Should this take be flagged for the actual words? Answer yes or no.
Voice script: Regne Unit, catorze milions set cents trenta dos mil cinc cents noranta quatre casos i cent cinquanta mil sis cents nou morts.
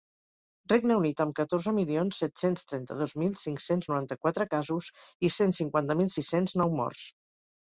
yes